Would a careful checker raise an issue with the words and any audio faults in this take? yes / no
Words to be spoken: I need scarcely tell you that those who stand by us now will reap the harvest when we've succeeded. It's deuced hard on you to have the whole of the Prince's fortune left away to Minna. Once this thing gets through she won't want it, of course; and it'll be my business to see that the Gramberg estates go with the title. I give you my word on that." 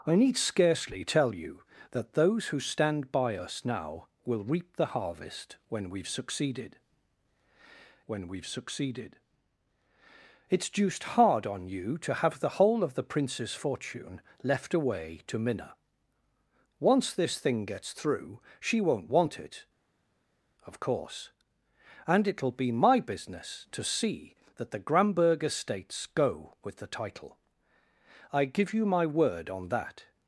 yes